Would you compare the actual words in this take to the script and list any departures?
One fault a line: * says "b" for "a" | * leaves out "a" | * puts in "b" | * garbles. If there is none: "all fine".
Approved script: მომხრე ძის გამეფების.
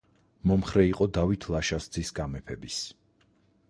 * puts in "იყო დავით ლაშას"